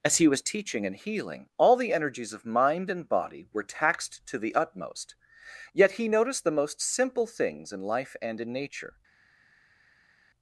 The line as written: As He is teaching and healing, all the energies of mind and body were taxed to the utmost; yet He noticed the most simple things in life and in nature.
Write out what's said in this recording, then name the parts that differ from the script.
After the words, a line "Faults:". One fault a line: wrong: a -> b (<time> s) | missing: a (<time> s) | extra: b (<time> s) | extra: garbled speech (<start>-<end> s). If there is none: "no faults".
As He was teaching and healing, all the energies of mind and body were taxed to the utmost; yet He noticed the most simple things in life and in nature.
Faults:
wrong: is -> was (0.3 s)